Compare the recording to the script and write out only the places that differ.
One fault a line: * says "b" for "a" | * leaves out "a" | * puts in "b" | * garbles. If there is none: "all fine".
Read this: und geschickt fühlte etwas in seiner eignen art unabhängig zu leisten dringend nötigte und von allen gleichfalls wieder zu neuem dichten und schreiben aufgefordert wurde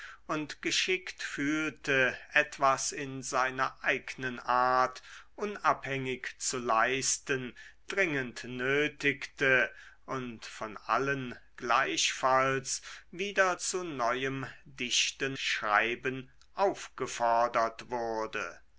* leaves out "und"